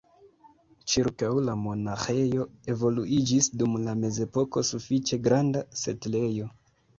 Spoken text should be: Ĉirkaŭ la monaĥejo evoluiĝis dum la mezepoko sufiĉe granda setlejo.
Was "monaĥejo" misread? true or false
false